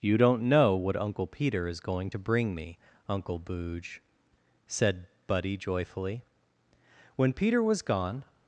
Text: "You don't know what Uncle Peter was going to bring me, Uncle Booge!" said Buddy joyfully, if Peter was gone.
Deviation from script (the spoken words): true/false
true